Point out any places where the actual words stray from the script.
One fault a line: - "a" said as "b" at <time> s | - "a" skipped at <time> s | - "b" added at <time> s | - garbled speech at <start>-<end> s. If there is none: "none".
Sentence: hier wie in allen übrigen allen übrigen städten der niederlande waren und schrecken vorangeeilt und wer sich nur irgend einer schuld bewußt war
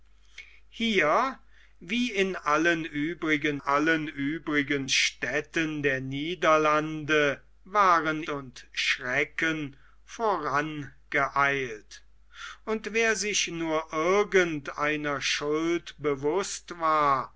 none